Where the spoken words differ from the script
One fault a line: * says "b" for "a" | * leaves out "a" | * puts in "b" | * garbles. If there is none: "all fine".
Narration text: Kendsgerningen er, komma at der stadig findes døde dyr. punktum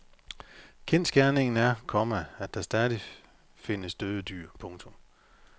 all fine